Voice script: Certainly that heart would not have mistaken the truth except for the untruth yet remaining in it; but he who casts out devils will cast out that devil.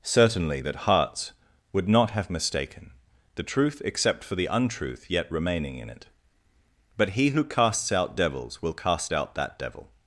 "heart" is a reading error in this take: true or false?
true